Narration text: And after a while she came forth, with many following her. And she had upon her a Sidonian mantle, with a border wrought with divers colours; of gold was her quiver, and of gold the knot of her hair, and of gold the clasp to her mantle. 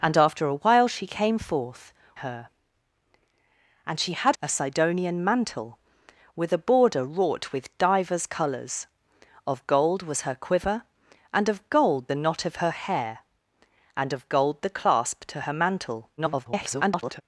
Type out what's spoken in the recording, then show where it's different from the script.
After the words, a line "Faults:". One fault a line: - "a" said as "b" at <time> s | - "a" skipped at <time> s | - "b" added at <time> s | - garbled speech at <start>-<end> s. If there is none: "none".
And after a while she came forth, her. And she had a Sidonian mantle, with a border wrought with divers colours; of gold was her quiver, and of gold the knot of her hair, and of gold the clasp to her mantle. [garbled]
Faults:
- "with many following" skipped at 1.9 s
- "upon her" skipped at 4.4 s
- garbled speech at 16.2-17.2 s